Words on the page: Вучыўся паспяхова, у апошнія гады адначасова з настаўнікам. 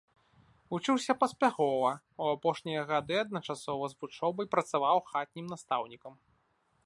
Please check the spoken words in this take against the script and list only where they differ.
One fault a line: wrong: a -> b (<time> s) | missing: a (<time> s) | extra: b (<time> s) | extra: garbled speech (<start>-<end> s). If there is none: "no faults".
extra: вучобай працаваў хатнім (4.0 s)